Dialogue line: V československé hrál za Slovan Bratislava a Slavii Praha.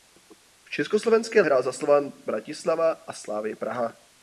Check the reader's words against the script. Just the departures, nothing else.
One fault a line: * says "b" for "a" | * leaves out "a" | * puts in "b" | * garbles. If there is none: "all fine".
all fine